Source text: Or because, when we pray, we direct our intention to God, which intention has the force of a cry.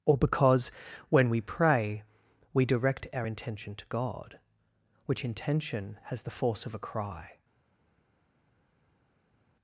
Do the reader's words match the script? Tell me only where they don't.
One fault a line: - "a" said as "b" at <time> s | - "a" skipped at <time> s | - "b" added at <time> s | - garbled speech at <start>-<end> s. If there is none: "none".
none